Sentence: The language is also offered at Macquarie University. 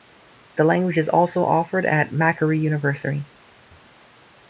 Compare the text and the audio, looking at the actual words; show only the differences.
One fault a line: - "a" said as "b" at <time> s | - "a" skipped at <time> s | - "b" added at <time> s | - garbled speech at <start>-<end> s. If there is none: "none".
none